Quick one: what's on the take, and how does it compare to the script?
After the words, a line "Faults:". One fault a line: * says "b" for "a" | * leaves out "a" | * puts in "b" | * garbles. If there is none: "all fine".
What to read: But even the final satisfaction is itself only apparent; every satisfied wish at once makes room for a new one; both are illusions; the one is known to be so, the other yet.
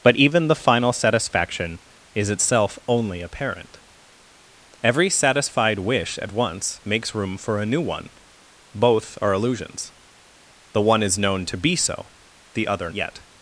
But even the final satisfaction is itself only apparent; every satisfied wish at once makes room for a new one; both are illusions; the one is known to be so, the other yet.
Faults:
all fine